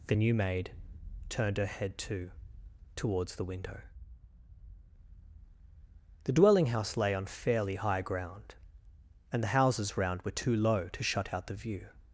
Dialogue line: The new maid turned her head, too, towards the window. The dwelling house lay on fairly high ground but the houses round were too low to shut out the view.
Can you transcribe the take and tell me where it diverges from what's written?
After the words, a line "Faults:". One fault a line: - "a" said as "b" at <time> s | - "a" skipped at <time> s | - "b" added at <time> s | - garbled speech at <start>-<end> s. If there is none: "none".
The new maid turned her head, too, towards the window. The dwelling house lay on fairly high ground and the houses round were too low to shut out the view.
Faults:
- "but" said as "and" at 9.3 s